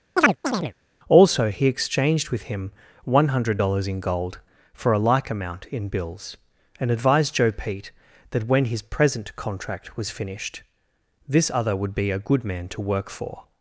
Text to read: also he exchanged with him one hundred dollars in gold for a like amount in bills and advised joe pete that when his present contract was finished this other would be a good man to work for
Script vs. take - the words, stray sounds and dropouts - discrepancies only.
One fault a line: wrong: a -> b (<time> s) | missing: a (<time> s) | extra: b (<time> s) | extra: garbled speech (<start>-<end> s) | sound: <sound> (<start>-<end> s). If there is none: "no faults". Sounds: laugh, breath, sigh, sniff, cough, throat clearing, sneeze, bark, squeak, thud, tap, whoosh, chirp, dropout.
sound: chirp (0.2-0.7 s)